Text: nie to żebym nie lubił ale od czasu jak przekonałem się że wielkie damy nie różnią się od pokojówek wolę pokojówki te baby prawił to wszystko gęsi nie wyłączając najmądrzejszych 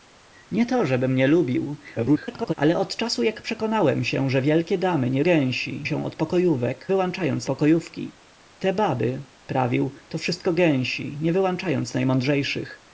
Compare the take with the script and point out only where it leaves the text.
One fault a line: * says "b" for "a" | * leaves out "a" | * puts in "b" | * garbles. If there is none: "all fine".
* garbles
* says "gęsi" for "różnią"
* says "wyłączając" for "wolę"